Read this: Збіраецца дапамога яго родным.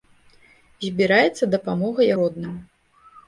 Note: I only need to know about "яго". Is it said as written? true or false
false